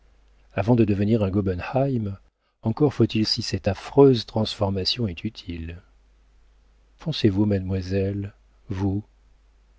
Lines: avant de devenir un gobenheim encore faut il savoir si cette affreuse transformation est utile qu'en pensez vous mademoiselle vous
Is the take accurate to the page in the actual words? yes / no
no